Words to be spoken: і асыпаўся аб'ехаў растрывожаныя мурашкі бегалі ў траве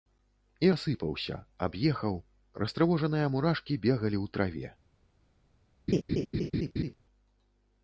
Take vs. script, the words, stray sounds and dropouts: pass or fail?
fail